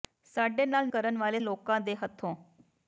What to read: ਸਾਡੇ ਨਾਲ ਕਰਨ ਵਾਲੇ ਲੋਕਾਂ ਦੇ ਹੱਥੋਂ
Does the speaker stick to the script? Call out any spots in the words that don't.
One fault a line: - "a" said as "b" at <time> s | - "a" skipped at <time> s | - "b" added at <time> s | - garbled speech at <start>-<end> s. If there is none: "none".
none